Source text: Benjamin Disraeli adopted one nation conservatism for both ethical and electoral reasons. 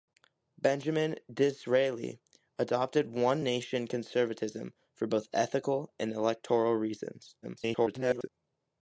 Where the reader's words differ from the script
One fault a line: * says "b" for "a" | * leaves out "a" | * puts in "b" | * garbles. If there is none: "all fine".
* garbles